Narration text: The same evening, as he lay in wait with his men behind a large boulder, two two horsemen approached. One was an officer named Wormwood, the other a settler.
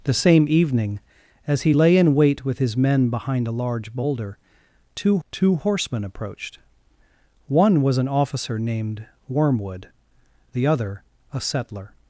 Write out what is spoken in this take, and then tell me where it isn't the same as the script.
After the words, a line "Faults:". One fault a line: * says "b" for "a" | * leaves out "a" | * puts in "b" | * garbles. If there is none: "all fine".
The same evening, as he lay in wait with his men behind a large boulder, two two horsemen approached. One was an officer named Wormwood, the other a settler.
Faults:
all fine